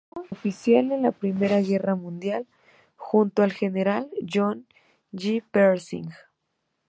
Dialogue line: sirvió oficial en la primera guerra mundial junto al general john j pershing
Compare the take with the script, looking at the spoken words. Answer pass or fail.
pass